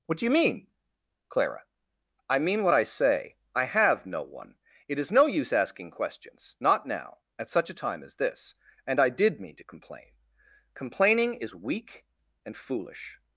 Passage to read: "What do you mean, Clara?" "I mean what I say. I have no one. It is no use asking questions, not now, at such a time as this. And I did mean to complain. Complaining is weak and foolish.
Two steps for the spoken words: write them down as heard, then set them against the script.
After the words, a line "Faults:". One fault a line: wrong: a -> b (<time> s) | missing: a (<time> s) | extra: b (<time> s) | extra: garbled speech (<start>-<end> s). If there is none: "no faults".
"What do you mean, Clara?" "I mean what I say. I have no one. It is no use asking questions, not now, at such a time as this. And I did mean to complain. Complaining is weak and foolish.
Faults:
no faults